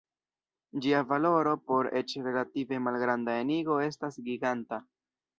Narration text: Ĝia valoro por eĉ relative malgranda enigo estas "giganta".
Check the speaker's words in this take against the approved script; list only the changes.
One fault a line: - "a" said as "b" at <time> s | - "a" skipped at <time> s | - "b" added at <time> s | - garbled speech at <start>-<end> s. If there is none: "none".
none